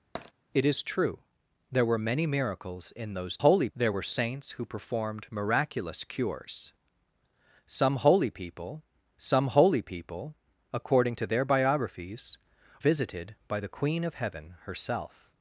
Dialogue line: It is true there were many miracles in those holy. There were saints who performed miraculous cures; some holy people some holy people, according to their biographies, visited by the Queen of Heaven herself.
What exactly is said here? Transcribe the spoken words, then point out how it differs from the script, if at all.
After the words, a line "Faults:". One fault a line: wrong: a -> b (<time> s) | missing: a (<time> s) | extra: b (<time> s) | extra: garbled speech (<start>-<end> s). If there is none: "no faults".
It is true there were many miracles in those holy. There were saints who performed miraculous cures; some holy people some holy people, according to their biographies, visited by the Queen of Heaven herself.
Faults:
no faults